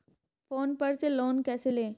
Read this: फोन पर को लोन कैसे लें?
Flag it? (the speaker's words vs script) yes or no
yes